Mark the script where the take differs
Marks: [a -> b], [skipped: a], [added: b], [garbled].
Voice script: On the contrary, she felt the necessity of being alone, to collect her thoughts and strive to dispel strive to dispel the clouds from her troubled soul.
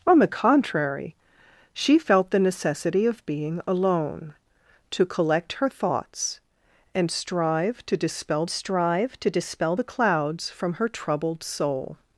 On the contrary, she felt the necessity of being alone, to collect her thoughts and strive to dispel strive to dispel the clouds from her troubled soul.